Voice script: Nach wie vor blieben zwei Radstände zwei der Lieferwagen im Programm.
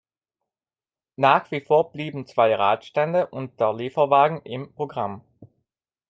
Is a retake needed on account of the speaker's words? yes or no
yes